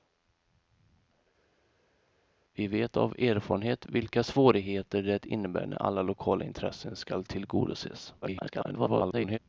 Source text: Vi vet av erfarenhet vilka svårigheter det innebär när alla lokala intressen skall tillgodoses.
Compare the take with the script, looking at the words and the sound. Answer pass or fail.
fail